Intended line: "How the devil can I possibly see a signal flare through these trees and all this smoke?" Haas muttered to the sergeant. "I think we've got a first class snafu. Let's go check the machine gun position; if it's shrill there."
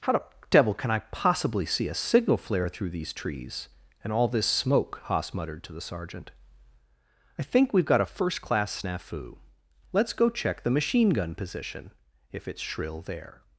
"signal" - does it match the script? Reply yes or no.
yes